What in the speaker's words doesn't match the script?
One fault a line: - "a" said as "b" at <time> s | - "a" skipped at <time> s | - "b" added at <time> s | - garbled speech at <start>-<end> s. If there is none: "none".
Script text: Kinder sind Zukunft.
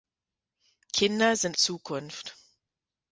none